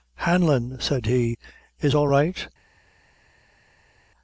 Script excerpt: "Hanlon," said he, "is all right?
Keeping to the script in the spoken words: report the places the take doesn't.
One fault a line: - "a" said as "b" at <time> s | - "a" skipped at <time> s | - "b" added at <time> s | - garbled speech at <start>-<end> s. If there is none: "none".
none